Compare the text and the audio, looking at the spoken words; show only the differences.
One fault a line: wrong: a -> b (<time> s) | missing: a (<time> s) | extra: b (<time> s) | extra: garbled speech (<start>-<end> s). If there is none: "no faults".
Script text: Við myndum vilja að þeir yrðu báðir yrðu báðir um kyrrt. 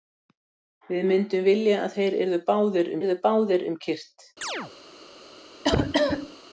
no faults